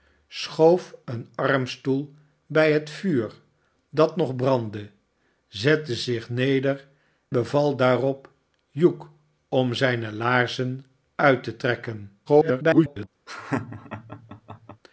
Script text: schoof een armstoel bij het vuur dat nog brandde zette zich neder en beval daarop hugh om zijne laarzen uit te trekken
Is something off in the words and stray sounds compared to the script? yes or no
yes